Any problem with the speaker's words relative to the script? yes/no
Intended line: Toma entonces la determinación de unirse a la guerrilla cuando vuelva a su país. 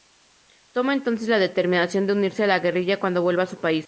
no